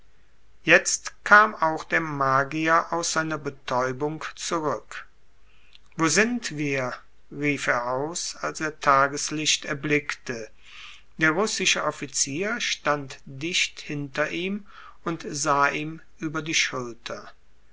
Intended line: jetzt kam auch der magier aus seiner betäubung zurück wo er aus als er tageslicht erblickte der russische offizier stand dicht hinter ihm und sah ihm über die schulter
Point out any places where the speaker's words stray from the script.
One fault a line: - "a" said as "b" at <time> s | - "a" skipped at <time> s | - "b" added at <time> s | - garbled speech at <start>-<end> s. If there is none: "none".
- "sind wir rief" added at 6.1 s